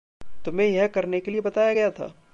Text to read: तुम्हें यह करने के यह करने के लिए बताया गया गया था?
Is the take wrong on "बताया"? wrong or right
right